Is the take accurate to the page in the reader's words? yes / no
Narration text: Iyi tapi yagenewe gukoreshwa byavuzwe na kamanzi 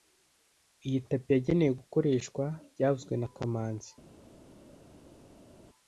yes